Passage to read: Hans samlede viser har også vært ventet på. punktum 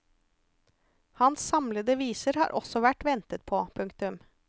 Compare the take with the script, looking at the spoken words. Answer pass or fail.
pass